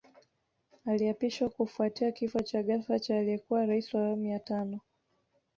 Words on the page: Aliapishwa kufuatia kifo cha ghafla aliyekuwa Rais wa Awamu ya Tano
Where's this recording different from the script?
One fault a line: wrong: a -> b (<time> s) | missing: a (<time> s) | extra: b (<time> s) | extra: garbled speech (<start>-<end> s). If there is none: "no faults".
extra: cha (3.0 s)